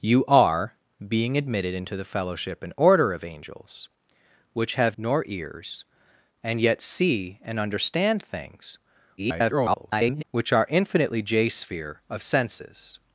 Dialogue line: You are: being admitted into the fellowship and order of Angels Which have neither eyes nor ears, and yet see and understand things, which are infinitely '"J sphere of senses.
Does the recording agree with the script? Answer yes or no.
no